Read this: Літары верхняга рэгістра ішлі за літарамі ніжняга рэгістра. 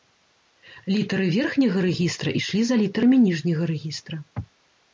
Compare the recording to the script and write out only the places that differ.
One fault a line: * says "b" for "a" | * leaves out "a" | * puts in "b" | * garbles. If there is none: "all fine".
all fine